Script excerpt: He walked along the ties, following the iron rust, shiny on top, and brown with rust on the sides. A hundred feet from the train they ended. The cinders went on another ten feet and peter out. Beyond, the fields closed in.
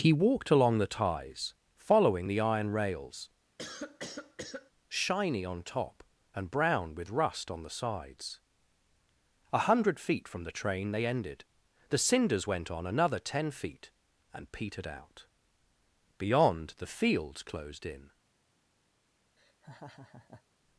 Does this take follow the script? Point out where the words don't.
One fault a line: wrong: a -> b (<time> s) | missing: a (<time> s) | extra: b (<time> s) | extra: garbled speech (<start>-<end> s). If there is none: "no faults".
wrong: rust -> rails (2.7 s)
wrong: peter -> petered (14.5 s)